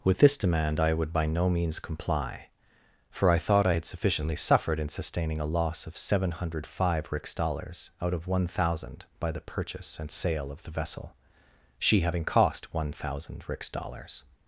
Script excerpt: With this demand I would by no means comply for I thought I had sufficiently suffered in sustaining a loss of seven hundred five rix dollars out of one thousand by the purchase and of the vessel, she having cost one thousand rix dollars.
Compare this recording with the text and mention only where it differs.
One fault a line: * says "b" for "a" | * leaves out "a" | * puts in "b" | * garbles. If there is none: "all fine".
* puts in "sale"